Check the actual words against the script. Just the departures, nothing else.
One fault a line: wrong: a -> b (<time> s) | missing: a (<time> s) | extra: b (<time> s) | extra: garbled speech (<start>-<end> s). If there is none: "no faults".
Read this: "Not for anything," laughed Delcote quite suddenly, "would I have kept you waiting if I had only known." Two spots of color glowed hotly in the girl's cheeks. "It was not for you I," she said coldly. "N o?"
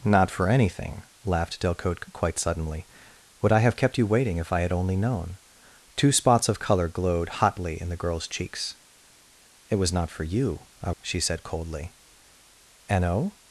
no faults